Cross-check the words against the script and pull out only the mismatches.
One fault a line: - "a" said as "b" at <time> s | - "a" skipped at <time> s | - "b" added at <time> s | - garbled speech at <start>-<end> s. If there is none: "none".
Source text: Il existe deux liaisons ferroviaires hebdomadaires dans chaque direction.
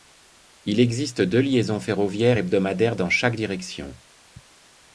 none